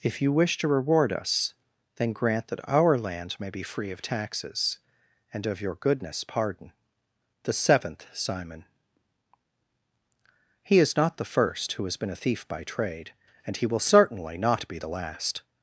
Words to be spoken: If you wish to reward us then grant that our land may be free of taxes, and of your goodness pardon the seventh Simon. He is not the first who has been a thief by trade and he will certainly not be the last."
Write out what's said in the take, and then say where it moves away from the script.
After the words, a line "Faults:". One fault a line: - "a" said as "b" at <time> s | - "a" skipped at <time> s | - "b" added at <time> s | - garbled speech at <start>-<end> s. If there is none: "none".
If you wish to reward us then grant that our land may be free of taxes, and of your goodness pardon the seventh Simon. He is not the first who has been a thief by trade and he will certainly not be the last."
Faults:
none